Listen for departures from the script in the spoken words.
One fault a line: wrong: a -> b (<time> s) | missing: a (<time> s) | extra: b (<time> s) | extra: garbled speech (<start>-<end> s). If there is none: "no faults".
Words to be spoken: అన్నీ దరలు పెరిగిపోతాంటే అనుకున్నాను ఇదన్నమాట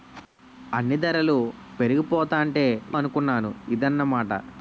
no faults